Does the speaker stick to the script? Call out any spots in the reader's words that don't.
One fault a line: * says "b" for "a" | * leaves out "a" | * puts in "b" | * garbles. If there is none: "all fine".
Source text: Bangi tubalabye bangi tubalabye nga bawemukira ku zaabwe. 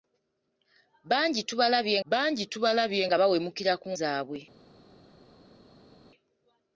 all fine